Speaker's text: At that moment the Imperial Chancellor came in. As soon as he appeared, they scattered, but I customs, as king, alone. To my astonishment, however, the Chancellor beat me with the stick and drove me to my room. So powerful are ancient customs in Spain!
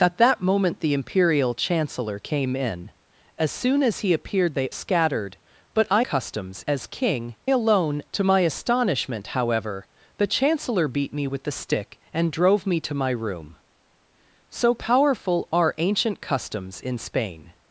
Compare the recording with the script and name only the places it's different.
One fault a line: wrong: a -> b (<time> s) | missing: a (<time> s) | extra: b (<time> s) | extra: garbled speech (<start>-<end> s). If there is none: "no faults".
no faults